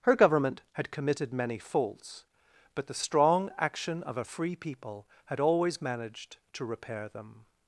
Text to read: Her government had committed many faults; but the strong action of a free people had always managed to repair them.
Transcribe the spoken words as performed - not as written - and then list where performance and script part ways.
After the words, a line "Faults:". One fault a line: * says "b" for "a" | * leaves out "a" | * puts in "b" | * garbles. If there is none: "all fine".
Her government had committed many faults; but the strong action of a free people had always managed to repair them.
Faults:
all fine